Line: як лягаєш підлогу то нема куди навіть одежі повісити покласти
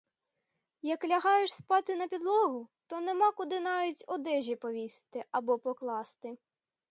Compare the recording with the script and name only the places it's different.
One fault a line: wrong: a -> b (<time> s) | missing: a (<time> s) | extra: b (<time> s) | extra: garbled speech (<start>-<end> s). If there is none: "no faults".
extra: спати на (1.5 s)
extra: або (5.3 s)